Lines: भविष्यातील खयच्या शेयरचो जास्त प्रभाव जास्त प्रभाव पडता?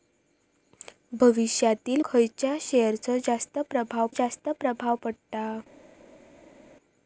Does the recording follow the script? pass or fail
pass